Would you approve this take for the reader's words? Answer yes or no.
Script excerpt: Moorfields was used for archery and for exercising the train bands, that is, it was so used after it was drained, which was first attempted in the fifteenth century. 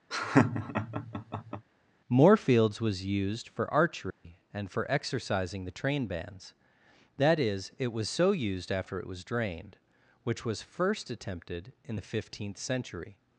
yes